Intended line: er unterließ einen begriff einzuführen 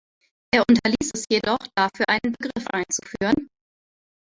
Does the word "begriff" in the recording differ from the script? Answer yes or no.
no